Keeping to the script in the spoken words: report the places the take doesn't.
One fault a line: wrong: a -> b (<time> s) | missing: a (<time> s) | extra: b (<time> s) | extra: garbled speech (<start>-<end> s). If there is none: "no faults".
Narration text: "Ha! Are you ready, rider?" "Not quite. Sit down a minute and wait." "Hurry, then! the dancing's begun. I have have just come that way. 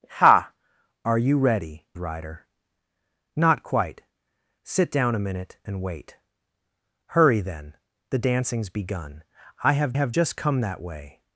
no faults